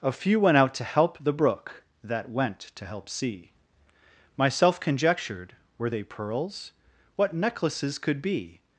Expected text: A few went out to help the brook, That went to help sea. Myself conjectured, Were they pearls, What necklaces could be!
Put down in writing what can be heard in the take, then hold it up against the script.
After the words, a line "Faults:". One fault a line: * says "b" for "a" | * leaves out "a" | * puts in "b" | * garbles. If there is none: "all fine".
A few went out to help the brook, That went to help sea. Myself conjectured, Were they pearls, What necklaces could be!
Faults:
all fine